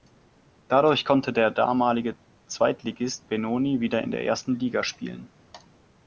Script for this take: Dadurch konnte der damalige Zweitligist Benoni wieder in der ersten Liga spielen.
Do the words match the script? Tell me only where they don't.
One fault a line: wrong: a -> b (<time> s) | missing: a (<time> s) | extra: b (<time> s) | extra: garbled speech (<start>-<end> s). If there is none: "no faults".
no faults